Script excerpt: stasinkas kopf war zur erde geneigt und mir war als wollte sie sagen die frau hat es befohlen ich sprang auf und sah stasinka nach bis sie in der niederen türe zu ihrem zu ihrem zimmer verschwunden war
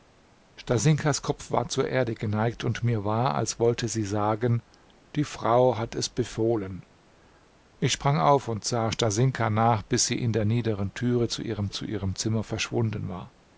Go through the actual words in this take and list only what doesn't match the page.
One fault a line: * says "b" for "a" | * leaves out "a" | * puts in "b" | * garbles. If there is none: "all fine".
all fine